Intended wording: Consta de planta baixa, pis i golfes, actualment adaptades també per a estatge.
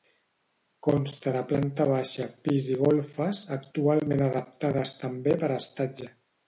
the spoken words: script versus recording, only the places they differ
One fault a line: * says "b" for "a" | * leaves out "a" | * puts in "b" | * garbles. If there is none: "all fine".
all fine